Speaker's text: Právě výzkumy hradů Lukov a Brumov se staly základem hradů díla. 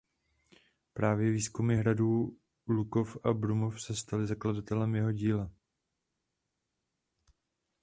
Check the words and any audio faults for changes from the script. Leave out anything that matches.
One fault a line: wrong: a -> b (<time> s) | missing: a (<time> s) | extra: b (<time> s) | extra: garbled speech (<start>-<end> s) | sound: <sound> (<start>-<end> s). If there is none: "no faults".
wrong: hradů -> jeho (4.9 s)